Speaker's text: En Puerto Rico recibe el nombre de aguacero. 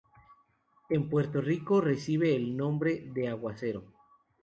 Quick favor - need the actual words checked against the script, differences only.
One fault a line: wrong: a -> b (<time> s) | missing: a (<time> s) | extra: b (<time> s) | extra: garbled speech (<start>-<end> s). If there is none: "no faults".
no faults